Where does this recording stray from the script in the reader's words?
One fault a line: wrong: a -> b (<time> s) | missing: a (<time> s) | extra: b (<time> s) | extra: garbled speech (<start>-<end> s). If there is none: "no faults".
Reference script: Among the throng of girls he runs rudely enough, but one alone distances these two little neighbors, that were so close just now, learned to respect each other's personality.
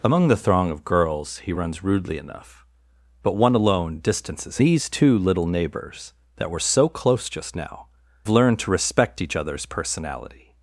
no faults